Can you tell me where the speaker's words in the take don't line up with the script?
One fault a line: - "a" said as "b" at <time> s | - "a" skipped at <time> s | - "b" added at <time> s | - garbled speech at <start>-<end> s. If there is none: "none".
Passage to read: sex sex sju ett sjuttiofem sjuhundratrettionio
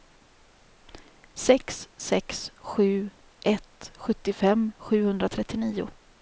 none